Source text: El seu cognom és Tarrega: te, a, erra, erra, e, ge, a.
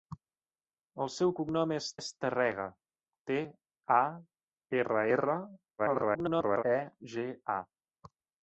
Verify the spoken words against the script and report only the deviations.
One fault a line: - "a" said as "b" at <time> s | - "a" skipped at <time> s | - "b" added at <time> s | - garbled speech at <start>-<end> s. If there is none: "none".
- "és" added at 2.0 s
- garbled speech at 5.8-6.6 s